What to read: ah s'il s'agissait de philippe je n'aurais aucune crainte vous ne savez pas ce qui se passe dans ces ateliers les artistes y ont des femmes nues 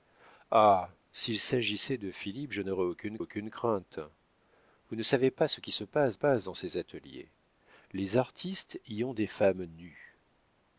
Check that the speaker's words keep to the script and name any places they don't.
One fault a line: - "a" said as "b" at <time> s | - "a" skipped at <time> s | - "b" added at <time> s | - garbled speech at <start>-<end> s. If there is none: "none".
- "aucune" added at 3.2 s
- "passe" added at 6.1 s